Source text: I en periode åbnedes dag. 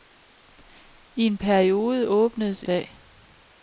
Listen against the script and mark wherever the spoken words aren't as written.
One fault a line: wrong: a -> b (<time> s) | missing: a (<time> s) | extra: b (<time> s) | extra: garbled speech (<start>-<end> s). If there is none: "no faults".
no faults